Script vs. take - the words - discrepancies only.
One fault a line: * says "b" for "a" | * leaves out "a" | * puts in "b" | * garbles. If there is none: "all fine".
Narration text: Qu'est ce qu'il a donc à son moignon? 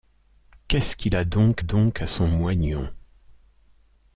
* puts in "donc"